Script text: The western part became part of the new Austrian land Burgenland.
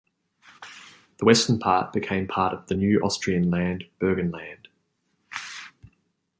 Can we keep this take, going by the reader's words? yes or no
yes